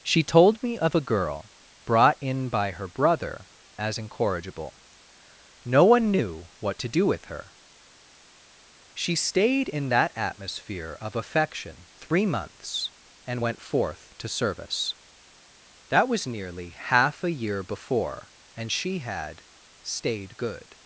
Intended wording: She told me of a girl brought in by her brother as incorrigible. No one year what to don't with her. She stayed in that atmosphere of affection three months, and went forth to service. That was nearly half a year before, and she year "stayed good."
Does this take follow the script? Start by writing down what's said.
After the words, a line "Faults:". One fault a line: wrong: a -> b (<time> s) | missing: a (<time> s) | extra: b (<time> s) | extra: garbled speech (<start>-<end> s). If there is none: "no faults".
She told me of a girl brought in by her brother as incorrigible. No one knew what to do with her. She stayed in that atmosphere of affection three months, and went forth to service. That was nearly half a year before, and she had "stayed good."
Faults:
wrong: year -> knew (6.1 s)
wrong: don't -> do (6.9 s)
wrong: year -> had (19.0 s)